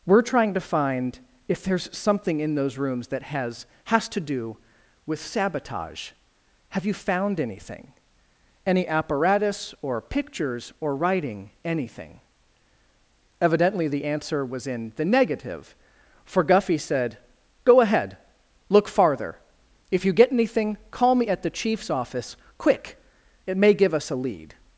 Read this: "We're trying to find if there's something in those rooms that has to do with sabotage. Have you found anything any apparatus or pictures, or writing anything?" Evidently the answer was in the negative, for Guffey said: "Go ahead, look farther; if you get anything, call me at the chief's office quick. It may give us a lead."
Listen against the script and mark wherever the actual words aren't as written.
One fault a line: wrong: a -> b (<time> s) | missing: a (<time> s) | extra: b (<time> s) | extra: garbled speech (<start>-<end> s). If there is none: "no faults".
extra: has (3.9 s)